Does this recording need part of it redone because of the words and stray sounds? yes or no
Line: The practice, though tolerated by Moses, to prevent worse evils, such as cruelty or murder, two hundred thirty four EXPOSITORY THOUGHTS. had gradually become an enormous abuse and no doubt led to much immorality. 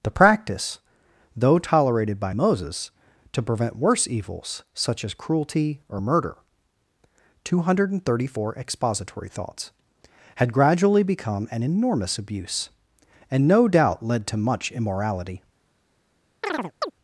yes